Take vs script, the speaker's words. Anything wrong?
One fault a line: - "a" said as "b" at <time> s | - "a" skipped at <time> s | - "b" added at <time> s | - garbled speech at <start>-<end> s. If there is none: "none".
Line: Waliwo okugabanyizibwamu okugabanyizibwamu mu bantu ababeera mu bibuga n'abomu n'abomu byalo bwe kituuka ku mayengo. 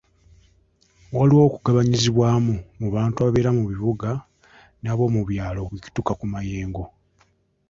- "okugabanyizibwamu" skipped at 2.5 s
- "n'abomu" skipped at 5.2 s